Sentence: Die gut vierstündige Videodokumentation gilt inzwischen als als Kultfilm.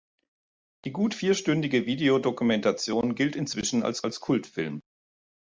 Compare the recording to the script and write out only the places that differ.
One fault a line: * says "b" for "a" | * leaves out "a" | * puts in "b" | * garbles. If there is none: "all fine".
all fine